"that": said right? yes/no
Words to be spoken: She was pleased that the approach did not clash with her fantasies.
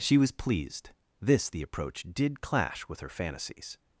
no